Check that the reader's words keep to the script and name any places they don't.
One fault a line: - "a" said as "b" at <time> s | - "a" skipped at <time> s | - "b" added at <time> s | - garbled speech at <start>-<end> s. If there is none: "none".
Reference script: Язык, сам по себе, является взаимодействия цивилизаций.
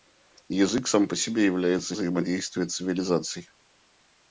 none